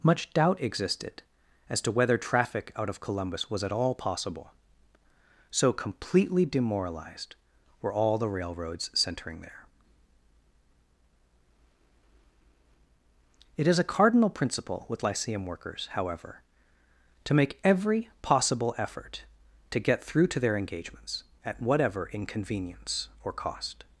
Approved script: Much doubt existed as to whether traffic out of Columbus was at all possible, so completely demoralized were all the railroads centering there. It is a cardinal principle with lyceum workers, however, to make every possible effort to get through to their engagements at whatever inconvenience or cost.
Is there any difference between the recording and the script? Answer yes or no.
no